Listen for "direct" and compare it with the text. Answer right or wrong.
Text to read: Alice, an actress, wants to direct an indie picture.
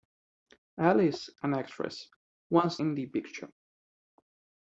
wrong